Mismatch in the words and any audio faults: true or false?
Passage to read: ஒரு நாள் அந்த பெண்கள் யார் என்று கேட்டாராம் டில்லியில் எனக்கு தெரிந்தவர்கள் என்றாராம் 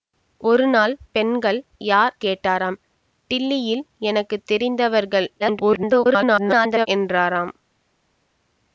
true